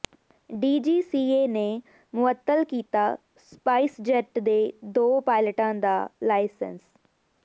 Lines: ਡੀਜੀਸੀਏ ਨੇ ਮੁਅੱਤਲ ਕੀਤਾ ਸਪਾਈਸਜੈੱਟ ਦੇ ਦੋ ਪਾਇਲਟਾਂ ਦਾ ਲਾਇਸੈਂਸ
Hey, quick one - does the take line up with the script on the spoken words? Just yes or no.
yes